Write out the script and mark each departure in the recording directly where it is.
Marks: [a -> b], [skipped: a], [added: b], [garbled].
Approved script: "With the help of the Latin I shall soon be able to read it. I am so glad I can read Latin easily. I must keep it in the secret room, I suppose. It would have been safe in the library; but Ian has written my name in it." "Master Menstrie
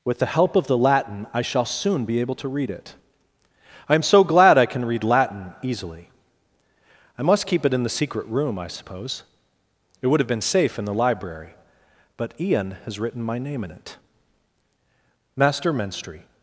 "With the help of the Latin I shall soon be able to read it. I am so glad I can read Latin easily. I must keep it in the secret room, I suppose. It would have been safe in the library; but Ian has written my name in it." "Master Menstrie